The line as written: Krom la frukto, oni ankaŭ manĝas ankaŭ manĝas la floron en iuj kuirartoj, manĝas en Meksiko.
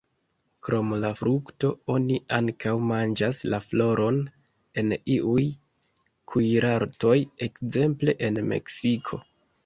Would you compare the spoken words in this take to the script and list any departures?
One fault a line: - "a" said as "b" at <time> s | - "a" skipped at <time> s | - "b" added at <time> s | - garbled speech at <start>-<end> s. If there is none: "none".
- "ankaŭ manĝas" skipped at 3.4 s
- "manĝas" said as "ekzemple" at 7.5 s